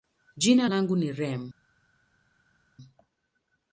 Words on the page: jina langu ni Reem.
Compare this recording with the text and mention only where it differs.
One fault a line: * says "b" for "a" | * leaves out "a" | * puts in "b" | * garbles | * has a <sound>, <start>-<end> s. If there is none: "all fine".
all fine